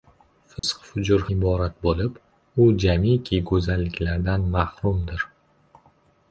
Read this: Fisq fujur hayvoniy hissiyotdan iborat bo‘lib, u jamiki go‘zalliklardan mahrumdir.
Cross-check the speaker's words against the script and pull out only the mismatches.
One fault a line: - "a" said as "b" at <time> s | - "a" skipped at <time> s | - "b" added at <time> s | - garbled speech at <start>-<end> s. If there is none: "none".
- "hayvoniy hissiyotdan" skipped at 1.2 s